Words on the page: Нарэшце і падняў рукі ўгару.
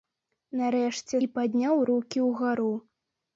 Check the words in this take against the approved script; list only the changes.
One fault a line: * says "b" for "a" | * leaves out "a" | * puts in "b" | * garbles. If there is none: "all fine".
all fine